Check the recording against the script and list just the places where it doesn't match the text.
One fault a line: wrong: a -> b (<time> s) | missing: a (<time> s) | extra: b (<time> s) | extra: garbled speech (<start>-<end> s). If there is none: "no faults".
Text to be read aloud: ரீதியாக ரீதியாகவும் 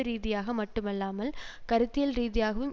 extra: மட்டுமல்லாமல் கருத்தியல் (0.5 s)